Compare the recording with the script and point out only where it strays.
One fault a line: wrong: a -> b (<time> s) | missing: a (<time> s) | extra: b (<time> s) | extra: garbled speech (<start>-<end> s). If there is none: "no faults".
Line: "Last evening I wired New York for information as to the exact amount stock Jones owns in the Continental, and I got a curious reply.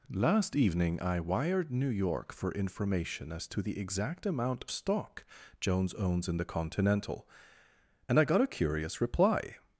no faults